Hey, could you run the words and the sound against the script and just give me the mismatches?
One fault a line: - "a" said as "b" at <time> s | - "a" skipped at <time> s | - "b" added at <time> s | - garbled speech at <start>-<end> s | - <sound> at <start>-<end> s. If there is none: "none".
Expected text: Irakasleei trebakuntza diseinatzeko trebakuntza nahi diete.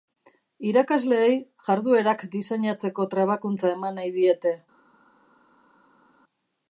- "trebakuntza" said as "jarduerak" at 1.7 s
- "eman" added at 3.8 s